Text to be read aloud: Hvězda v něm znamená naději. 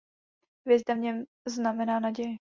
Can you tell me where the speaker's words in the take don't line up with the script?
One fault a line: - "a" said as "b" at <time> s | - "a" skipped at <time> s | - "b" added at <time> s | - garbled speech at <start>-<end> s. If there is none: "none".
none